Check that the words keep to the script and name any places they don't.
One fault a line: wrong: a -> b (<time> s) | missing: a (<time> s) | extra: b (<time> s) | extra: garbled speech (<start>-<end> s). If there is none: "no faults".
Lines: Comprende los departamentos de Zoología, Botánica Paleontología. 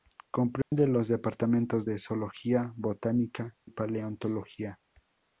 no faults